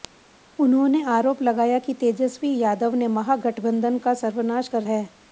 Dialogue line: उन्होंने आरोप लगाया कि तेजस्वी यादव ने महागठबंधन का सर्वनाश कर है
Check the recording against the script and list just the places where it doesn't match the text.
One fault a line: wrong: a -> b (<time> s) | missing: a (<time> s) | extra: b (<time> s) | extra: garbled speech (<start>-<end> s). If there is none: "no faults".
no faults